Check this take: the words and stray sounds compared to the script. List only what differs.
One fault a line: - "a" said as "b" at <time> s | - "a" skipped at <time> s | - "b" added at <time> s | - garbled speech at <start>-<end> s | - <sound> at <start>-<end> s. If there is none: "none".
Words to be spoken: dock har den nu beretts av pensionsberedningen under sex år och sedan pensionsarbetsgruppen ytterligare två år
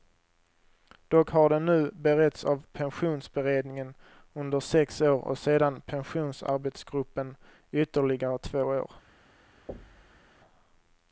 - thud at 9.7-10.2 s